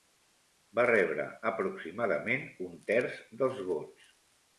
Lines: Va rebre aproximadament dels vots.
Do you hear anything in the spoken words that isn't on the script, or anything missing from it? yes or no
yes